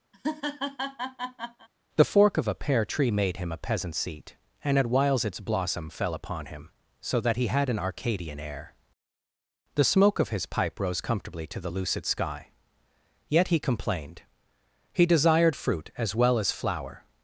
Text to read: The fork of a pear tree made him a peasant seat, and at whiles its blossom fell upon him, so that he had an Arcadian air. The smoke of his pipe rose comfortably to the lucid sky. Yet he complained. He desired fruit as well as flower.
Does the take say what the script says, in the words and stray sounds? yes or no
no